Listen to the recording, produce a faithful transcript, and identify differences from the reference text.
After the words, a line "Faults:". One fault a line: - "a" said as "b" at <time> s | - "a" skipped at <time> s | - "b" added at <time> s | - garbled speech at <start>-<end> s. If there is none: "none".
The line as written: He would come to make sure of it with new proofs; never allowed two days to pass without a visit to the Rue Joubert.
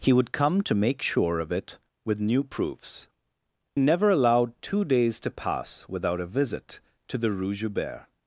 He would come to make sure of it with new proofs; never allowed two days to pass without a visit to the Rue Joubert.
Faults:
none